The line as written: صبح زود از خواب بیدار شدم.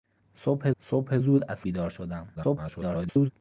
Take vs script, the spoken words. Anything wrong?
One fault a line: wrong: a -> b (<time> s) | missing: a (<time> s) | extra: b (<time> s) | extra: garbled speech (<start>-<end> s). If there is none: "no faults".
extra: صبح (0.8 s)
missing: خواب (1.6 s)
extra: garbled speech (2.3-3.3 s)